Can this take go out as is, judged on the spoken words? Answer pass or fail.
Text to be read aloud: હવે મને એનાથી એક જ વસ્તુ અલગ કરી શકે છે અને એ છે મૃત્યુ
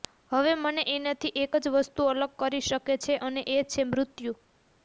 pass